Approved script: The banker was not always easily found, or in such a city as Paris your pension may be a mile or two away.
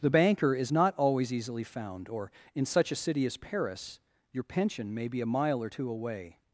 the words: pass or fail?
fail